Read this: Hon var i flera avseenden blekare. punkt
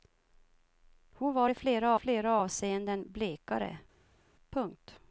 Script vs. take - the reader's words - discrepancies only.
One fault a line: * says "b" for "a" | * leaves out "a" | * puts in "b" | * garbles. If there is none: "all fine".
* puts in "flera"